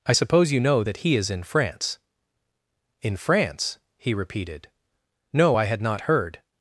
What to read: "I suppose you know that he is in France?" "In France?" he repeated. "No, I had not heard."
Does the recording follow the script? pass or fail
pass